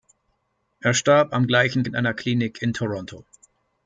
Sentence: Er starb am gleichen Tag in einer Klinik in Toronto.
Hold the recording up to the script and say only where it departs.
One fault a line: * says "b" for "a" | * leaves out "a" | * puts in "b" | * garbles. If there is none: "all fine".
* leaves out "Tag"